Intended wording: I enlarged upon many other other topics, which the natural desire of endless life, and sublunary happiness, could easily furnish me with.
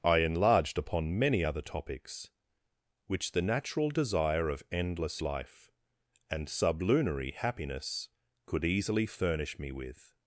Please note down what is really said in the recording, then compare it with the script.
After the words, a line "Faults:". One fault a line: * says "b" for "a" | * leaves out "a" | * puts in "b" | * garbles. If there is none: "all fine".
I enlarged upon many other topics, which the natural desire of endless life, and sublunary happiness, could easily furnish me with.
Faults:
* leaves out "other"